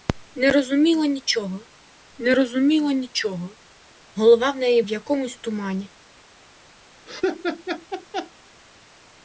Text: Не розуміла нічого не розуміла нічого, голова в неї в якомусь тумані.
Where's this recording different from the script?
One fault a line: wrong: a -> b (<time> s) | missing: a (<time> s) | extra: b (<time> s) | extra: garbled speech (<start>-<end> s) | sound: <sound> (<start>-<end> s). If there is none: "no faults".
sound: laugh (7.1-8.3 s)